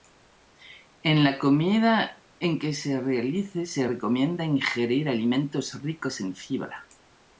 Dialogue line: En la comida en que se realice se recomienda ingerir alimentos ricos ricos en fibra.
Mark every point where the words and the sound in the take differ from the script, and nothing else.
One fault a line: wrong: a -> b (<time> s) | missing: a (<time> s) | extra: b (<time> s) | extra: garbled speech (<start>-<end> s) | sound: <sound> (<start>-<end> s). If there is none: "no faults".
missing: ricos (6.2 s)